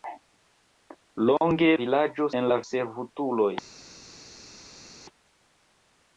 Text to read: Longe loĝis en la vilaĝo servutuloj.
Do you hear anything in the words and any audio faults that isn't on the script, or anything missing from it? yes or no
yes